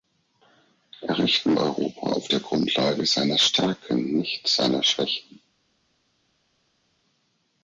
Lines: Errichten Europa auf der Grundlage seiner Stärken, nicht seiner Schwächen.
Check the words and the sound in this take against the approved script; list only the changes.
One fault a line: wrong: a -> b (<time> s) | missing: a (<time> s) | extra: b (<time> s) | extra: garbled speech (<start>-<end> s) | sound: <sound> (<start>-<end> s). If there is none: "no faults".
no faults